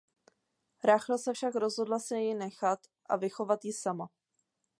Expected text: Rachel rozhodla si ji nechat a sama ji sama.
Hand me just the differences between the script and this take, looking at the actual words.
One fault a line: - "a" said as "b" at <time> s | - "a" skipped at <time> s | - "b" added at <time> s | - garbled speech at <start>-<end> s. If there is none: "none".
- "se však" added at 1.2 s
- "sama" said as "vychovat" at 3.2 s